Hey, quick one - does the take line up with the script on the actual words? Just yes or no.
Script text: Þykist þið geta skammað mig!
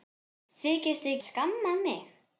no